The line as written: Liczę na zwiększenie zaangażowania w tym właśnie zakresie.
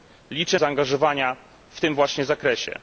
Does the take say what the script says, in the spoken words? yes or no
no